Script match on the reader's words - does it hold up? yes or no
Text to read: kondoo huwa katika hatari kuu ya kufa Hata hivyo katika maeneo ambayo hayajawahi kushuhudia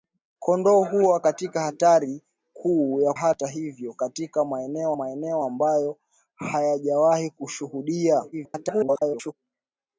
no